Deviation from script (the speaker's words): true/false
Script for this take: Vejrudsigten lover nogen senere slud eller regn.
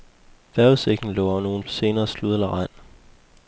false